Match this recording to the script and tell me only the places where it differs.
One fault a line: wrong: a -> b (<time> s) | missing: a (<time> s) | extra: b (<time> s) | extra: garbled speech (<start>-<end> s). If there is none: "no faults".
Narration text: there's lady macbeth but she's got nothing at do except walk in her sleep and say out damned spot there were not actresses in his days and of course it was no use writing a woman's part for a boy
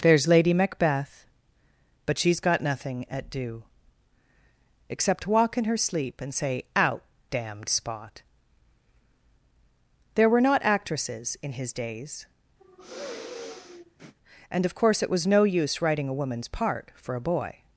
no faults